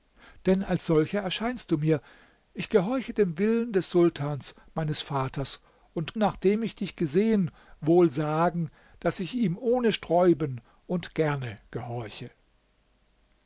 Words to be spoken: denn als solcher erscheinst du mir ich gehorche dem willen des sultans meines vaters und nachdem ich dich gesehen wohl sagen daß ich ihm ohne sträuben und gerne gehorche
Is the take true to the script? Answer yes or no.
yes